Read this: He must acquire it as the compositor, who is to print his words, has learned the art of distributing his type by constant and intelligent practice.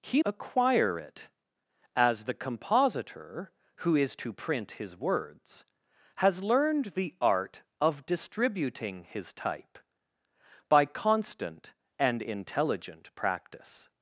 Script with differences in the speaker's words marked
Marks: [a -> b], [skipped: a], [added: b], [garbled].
He [skipped: must] acquire it as the compositor, who is to print his words, has learned the art of distributing his type by constant and intelligent practice.